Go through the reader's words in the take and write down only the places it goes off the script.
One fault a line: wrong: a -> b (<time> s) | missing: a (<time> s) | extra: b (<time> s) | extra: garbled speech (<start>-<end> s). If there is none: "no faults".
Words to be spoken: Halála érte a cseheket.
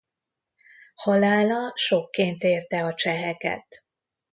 extra: sokként (1.7 s)